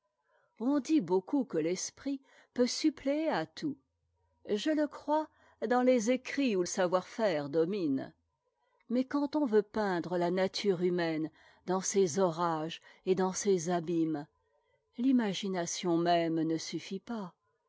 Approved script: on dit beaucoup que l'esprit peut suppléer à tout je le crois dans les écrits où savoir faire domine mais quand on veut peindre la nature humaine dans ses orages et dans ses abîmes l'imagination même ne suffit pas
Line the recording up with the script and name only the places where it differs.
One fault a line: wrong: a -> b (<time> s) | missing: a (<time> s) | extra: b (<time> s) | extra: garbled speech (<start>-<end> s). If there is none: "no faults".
no faults